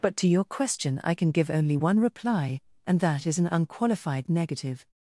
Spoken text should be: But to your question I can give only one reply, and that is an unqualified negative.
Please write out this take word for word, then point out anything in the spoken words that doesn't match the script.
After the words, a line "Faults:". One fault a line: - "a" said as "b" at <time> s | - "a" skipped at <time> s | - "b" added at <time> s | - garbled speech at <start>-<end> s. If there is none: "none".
But to your question I can give only one reply, and that is an unqualified negative.
Faults:
none